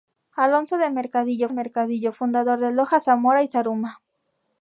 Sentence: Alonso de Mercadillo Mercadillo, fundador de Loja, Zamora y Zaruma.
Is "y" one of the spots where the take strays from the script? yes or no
no